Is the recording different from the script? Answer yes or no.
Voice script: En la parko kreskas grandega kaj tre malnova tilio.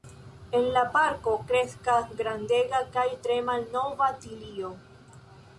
no